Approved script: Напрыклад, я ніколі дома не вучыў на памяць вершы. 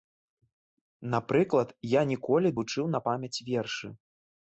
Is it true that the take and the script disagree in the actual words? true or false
true